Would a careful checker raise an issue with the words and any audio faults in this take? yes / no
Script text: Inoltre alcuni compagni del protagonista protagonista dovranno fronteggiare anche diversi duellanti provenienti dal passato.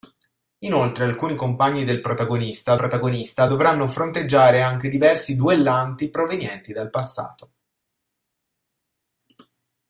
no